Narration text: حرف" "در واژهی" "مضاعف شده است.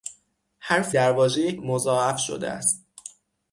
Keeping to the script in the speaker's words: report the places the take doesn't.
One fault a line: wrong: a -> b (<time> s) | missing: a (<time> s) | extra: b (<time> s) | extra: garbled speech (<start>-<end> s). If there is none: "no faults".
no faults